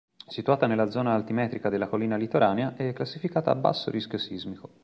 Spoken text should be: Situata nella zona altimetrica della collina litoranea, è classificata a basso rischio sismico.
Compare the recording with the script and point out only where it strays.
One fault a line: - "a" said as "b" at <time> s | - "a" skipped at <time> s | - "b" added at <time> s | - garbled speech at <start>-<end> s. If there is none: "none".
none